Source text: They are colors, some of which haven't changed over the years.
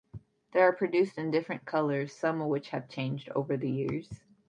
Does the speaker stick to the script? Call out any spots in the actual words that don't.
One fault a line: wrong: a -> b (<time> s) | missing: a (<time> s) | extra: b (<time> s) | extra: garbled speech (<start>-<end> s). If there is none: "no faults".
extra: produced in different (0.7 s)
wrong: haven't -> have (2.7 s)